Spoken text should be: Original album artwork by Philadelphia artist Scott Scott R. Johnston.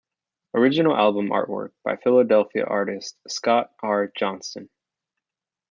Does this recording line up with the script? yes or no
no